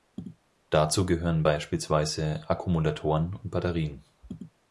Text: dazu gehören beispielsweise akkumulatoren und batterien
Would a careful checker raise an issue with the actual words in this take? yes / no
no